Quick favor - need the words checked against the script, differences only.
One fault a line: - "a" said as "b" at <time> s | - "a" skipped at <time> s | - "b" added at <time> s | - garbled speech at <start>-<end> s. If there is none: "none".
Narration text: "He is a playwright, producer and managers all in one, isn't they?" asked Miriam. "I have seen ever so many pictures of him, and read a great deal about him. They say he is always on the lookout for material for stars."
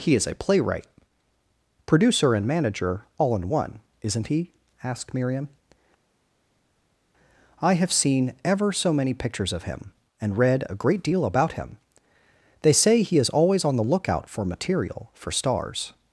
- "managers" said as "manager" at 2.5 s
- "they" said as "he" at 4.3 s